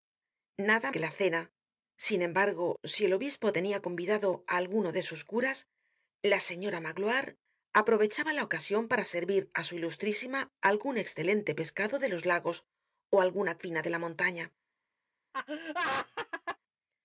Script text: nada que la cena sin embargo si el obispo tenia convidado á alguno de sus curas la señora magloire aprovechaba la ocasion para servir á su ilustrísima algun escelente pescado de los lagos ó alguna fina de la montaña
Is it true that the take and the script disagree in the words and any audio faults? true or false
true